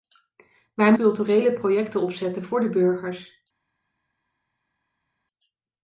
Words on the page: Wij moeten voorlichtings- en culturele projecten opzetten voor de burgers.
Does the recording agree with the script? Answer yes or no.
no